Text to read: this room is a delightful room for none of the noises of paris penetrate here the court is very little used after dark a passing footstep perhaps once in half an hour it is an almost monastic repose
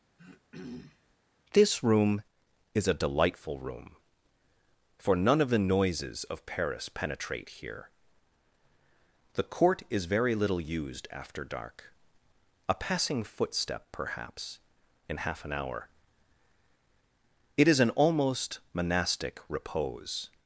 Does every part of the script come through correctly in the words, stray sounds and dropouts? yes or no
no